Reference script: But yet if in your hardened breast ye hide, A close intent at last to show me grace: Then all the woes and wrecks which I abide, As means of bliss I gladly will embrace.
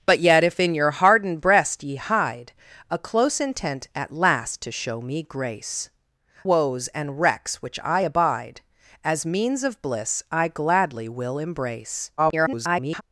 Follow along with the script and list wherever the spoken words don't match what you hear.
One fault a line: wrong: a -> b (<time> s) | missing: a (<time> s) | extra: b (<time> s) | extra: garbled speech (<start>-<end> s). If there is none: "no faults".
missing: Then all the (5.9 s)
extra: garbled speech (12.2-13.0 s)